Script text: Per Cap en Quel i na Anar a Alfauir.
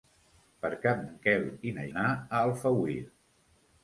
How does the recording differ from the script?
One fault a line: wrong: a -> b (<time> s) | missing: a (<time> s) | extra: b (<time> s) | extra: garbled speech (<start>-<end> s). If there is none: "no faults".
no faults